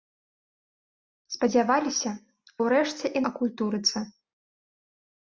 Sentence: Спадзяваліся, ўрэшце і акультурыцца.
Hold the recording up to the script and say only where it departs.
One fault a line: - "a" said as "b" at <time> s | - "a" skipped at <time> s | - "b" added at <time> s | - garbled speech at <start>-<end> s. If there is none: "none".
none